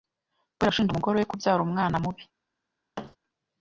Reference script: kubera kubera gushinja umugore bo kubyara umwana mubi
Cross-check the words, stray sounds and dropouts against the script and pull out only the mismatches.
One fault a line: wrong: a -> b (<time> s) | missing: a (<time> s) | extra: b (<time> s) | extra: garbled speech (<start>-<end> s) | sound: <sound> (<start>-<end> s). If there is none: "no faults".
missing: kubera (0.7 s)
wrong: bo -> we (1.2 s)
sound: thud (3.0-3.2 s)